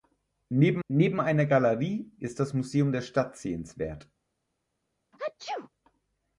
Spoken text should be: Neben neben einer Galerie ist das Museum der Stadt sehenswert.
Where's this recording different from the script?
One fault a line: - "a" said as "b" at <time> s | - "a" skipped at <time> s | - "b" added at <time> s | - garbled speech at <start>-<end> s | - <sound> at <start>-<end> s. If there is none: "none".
- sneeze at 5.1-5.7 s